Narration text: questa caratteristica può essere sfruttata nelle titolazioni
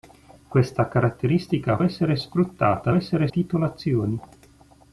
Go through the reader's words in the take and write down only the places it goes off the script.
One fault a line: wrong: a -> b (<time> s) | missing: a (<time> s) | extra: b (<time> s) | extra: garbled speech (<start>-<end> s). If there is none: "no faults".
missing: può (1.8 s)
wrong: nelle -> essere (2.9 s)